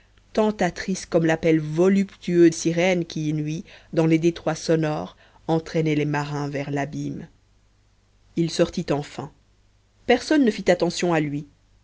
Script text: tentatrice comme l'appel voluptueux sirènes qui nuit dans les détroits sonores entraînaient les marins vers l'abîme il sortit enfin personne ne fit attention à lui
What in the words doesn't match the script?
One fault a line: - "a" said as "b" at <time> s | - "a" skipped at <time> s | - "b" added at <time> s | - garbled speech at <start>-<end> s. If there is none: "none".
none